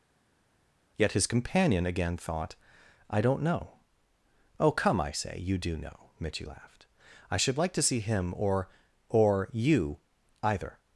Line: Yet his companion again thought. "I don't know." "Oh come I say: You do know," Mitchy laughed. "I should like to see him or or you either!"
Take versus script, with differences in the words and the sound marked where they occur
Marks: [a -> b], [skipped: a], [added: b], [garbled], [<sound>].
Yet his companion again thought. "I don't know." "Oh come I say: You do know," Mitchy laughed. "I should like to see him or or you either!"